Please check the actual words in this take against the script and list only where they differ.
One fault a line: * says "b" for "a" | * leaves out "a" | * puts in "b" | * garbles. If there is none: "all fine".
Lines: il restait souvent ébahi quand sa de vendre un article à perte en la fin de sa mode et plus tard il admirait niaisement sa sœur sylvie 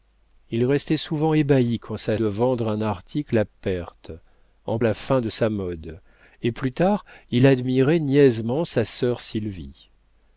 all fine